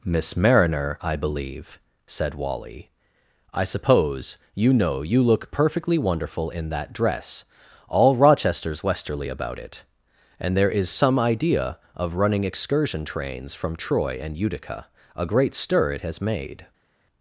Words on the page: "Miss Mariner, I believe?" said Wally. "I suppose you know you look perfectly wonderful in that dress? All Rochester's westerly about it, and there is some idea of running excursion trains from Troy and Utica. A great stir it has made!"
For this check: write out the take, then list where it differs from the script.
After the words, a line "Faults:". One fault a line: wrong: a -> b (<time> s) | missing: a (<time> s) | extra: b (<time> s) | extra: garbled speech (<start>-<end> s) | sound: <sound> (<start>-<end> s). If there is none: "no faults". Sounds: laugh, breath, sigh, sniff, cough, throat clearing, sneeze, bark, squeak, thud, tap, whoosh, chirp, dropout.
"Miss Mariner, I believe?" said Wally. "I suppose you know you look perfectly wonderful in that dress? All Rochester's westerly about it, and there is some idea of running excursion trains from Troy and Utica. A great stir it has made!"
Faults:
no faults